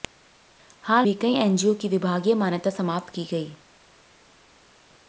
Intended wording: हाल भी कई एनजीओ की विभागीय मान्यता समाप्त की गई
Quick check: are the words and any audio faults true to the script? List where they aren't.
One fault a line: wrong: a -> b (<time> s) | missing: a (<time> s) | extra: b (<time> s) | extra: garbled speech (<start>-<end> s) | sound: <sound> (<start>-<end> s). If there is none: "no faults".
no faults